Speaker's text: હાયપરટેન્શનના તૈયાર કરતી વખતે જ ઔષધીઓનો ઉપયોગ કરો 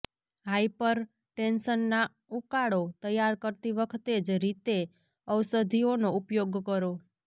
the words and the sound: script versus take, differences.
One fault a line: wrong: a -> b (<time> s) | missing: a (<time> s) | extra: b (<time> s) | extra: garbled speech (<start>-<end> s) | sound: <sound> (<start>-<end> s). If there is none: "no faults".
extra: ઉકાળો (2.4 s)
extra: રીતે (4.4 s)